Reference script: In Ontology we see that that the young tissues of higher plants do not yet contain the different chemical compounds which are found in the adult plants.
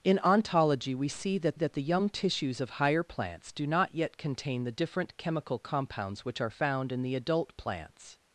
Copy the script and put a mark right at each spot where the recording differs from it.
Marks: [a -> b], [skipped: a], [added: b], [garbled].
In Ontology we see that that the young tissues of higher plants do not yet contain the different chemical compounds which are found in the adult plants.